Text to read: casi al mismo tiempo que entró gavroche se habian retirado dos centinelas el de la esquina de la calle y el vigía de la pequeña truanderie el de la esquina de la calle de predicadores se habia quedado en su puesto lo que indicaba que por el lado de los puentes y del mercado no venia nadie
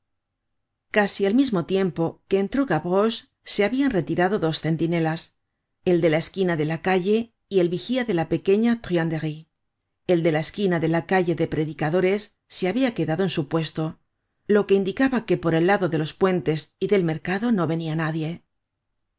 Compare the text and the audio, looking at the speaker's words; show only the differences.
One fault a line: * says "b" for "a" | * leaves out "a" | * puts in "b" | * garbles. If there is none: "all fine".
all fine